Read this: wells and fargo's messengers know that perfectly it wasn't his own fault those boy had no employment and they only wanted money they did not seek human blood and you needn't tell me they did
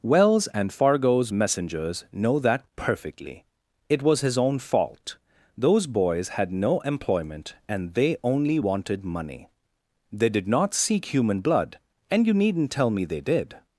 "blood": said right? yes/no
yes